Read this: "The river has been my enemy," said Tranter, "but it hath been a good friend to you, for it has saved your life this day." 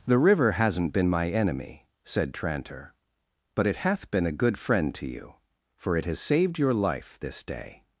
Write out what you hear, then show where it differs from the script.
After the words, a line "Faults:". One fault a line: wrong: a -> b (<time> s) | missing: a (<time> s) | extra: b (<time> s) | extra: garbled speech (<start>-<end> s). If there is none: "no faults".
"The river hasn't been my enemy," said Tranter, "but it hath been a good friend to you, for it has saved your life this day."
Faults:
wrong: has -> hasn't (0.5 s)